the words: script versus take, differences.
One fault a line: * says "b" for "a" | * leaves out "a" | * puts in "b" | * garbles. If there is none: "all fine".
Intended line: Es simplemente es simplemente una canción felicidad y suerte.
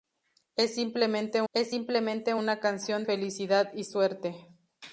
all fine